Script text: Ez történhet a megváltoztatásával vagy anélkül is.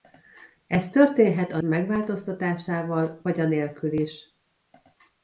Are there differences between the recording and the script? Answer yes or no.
no